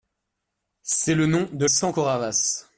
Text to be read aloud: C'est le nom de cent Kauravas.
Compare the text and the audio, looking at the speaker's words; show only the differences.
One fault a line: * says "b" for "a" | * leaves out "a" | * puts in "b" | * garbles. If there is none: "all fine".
all fine